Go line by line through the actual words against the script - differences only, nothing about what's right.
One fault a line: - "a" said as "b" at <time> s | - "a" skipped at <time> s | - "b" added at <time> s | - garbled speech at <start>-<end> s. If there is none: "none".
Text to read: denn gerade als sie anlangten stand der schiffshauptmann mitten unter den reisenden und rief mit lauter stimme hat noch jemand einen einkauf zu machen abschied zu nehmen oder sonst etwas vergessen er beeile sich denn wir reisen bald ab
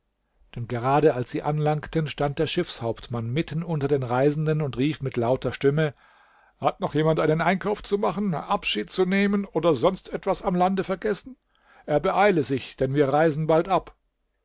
- "am lande" added at 10.4 s